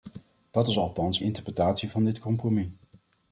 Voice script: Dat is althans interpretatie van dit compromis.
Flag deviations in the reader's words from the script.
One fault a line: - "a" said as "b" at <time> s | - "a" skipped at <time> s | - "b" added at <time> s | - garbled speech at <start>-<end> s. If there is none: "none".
none